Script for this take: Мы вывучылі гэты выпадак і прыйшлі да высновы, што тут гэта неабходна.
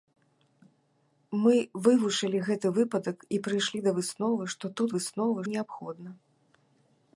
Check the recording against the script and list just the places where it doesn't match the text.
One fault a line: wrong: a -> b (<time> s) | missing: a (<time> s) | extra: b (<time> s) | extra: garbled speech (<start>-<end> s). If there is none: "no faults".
wrong: гэта -> высновы (5.0 s)